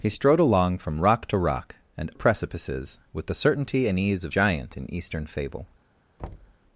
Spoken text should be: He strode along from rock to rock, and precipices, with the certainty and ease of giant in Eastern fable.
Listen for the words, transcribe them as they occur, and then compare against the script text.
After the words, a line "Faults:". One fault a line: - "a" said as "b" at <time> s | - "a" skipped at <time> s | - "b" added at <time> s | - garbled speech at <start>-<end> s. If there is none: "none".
He strode along from rock to rock, and precipices, with the certainty and ease of giant in Eastern fable.
Faults:
none